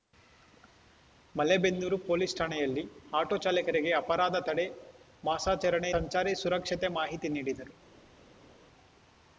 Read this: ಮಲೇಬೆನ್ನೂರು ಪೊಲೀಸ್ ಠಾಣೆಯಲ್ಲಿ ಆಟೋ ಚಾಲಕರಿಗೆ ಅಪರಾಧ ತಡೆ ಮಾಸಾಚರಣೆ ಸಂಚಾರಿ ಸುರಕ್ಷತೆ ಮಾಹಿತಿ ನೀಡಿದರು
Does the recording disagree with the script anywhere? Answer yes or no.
no